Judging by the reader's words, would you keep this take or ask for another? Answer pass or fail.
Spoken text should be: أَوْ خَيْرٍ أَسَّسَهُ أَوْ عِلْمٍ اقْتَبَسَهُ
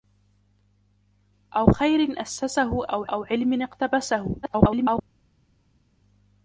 fail